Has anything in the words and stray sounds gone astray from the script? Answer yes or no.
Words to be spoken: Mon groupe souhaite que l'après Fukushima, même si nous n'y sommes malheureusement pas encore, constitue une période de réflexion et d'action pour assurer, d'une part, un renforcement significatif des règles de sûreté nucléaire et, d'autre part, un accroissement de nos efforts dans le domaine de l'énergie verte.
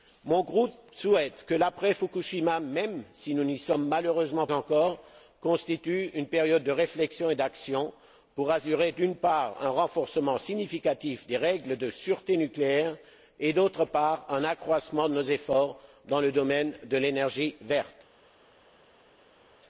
yes